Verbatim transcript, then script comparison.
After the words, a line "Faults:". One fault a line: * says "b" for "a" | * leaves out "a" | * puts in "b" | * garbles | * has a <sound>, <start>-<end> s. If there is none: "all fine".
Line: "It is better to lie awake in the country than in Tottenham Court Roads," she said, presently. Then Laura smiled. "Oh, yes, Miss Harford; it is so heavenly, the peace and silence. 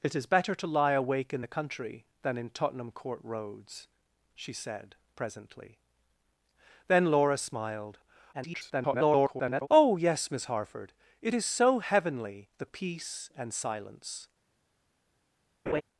"It is better to lie awake in the country than in Tottenham Court Roads," she said, presently. Then Laura smiled. [garbled] "Oh, yes, Miss Harford; it is so heavenly, the peace and silence.
Faults:
* garbles
* has a laugh, 15.7-15.8 s